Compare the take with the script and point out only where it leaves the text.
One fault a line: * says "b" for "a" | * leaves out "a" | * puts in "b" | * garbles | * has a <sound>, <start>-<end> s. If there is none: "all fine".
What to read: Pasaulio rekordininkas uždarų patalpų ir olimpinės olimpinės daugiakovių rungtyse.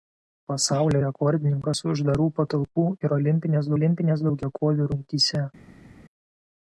all fine